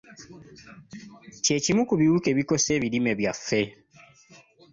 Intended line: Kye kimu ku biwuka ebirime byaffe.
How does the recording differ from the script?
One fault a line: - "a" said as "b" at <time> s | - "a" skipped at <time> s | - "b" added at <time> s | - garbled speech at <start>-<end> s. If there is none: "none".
- "ebikosa" added at 2.3 s